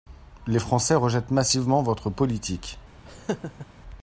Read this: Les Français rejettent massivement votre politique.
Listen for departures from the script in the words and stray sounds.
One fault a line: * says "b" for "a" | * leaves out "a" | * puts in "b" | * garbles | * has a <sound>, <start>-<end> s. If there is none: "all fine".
* has a laugh, 3.1-3.7 s